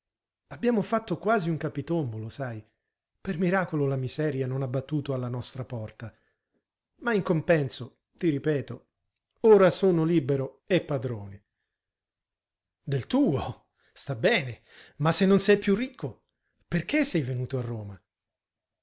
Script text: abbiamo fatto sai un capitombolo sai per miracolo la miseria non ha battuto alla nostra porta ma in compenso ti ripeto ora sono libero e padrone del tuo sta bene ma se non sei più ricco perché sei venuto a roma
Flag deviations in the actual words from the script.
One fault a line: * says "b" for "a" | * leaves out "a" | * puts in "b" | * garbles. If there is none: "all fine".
* says "quasi" for "sai"